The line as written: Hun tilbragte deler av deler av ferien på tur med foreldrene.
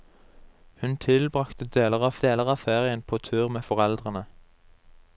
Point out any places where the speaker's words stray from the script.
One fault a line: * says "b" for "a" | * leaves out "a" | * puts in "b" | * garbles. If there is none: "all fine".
all fine